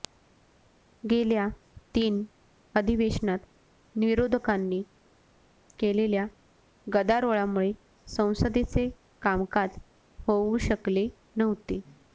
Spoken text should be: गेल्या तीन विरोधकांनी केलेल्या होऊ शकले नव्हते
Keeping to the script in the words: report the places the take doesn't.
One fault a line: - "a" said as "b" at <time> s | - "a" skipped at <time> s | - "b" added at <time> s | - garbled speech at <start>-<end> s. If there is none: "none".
- "अधिवेशनात" added at 2.7 s
- "गदारोळामुळे संसदेचे कामकाज" added at 6.9 s